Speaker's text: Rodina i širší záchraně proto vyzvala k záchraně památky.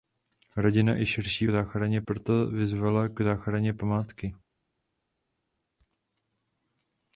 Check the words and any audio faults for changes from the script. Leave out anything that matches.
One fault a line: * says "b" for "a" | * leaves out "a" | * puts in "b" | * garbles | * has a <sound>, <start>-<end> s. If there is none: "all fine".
all fine